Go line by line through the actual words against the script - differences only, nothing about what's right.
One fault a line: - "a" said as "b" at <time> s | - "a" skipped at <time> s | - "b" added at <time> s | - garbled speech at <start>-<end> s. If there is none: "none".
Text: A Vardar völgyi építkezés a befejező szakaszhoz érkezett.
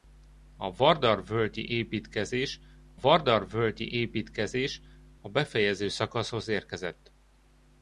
- "Vardar völgyi építkezés" added at 3.0 s